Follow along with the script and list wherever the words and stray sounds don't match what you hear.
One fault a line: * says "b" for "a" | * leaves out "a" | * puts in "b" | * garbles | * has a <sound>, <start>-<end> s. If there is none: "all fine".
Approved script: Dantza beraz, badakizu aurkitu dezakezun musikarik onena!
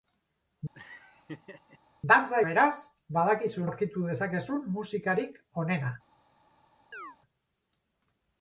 * has a laugh, 0.7-1.8 s
* has a chirp, 6.9-7.2 s